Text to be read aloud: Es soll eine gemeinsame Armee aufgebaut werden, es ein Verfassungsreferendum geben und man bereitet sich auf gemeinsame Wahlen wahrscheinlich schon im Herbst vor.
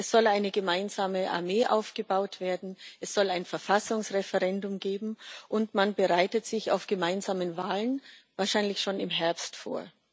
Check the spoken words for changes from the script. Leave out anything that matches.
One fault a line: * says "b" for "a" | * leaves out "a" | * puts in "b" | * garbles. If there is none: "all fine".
* puts in "soll"